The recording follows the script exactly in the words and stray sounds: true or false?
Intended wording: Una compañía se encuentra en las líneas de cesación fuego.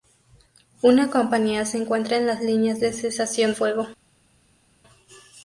true